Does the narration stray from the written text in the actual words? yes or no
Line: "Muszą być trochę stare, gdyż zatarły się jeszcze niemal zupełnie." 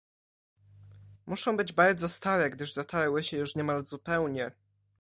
yes